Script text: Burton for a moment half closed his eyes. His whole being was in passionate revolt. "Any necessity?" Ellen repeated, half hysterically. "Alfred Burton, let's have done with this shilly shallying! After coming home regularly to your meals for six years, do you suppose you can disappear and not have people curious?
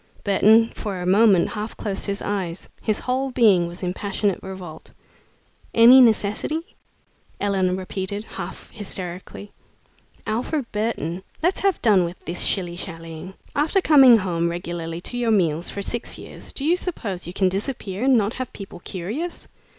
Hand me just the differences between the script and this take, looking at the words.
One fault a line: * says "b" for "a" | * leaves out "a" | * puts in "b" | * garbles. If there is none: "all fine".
all fine